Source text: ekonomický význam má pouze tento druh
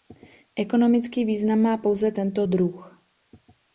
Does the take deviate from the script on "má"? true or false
false